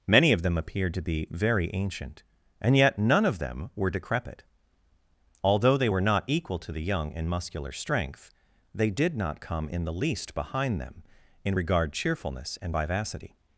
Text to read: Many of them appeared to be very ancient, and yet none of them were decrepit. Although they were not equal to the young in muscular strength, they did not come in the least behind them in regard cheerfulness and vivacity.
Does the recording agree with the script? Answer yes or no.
yes